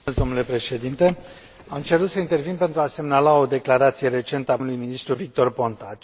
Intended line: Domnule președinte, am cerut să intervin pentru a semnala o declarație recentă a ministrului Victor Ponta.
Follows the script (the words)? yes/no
yes